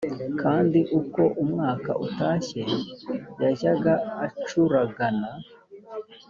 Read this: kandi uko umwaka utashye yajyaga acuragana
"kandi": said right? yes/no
yes